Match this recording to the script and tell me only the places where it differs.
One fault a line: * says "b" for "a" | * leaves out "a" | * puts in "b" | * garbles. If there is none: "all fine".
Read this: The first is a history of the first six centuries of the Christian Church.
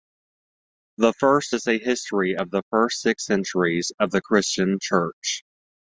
all fine